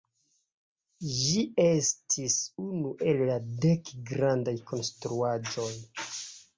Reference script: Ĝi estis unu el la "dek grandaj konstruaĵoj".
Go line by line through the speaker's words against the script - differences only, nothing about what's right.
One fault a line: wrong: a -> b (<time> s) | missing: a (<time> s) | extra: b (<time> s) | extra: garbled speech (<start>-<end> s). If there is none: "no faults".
no faults